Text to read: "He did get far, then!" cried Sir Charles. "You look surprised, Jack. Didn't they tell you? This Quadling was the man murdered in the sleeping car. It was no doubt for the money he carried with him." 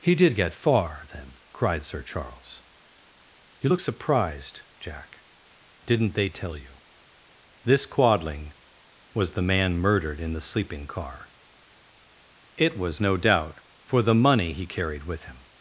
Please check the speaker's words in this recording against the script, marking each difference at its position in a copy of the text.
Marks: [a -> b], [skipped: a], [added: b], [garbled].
"He did get far, then!" cried Sir Charles. "You look surprised, Jack. Didn't they tell you? This Quadling was the man murdered in the sleeping car. It was no doubt for the money he carried with him."